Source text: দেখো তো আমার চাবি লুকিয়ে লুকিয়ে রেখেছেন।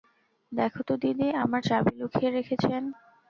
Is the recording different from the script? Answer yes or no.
yes